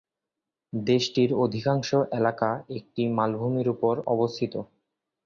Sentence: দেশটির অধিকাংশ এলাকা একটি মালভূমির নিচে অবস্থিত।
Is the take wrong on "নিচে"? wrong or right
wrong